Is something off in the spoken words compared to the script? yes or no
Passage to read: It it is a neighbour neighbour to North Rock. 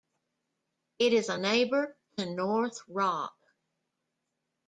yes